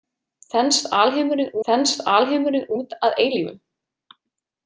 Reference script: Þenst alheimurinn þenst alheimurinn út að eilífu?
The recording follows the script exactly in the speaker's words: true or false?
true